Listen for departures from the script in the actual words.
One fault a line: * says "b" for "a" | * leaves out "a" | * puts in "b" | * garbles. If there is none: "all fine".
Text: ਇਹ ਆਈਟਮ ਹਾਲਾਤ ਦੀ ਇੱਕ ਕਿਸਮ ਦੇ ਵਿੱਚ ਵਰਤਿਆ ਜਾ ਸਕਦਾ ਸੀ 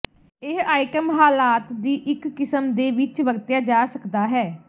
* says "ਹੈ" for "ਸੀ"